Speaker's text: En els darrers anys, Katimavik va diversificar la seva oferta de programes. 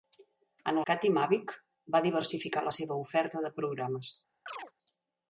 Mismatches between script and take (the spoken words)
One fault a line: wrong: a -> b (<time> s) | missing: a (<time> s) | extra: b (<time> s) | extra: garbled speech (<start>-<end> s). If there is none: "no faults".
missing: els darrers anys (0.8 s)